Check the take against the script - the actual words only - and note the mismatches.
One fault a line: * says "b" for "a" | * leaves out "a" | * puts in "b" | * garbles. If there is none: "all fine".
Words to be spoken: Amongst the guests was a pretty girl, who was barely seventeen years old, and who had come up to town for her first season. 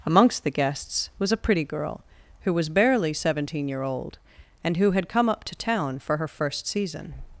* says "year" for "years"